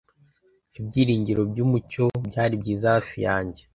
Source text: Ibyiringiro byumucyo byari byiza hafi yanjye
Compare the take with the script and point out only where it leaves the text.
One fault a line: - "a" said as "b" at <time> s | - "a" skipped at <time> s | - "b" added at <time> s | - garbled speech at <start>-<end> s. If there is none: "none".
none